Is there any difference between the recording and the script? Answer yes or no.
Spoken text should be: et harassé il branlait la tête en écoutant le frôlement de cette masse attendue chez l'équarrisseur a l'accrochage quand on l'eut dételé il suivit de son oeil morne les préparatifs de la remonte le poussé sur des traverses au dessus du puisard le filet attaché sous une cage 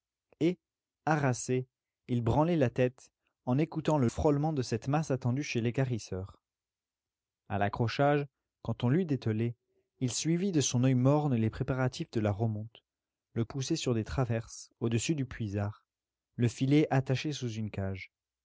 no